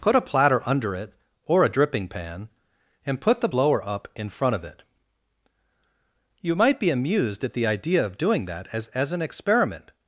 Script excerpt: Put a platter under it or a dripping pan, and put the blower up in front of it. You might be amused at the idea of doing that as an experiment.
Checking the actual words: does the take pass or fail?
fail